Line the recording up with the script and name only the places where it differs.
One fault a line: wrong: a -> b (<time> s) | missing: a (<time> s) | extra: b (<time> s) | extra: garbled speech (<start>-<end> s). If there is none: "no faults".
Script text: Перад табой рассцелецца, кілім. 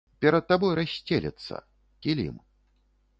no faults